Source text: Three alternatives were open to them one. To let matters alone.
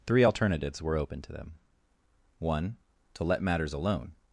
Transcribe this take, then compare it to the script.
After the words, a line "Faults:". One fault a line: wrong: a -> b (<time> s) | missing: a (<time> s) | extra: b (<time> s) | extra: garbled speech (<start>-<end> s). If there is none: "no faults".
Three alternatives were open to them one. To let matters alone.
Faults:
no faults